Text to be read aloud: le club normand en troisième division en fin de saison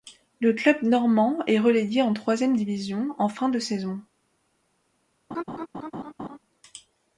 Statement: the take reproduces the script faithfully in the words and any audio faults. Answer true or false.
false